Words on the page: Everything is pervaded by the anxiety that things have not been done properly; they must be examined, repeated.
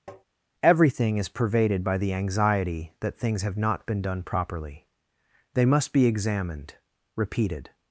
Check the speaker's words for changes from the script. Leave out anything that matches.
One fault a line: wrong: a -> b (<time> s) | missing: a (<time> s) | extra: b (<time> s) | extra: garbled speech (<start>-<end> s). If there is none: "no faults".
no faults